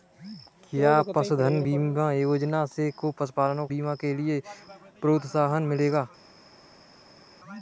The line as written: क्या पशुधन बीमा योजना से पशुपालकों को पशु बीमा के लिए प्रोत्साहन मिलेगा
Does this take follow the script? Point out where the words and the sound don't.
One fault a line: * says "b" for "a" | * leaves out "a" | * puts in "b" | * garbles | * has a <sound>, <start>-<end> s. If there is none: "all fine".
* leaves out "को पशु"